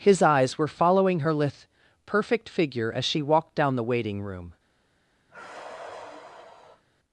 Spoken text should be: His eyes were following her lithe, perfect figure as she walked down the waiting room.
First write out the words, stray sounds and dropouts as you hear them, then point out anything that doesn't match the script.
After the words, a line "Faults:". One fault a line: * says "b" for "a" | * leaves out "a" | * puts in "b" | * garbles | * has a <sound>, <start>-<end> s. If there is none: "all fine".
His eyes were following her lithe, perfect figure as she walked down the waiting room.
Faults:
* has a sigh, 5.3-6.8 s